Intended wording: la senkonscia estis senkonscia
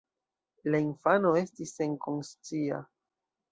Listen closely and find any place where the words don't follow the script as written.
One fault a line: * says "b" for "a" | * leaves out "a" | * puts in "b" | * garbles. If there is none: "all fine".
* says "infano" for "senkonscia"